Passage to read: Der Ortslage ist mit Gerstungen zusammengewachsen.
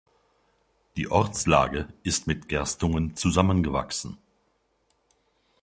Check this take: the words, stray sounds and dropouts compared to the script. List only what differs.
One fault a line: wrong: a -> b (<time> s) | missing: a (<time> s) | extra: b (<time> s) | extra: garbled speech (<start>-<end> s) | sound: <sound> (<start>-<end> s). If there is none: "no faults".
wrong: Der -> Die (1.0 s)